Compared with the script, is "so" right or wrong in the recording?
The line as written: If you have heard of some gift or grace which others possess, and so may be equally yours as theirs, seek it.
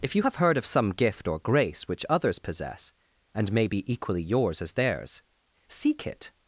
wrong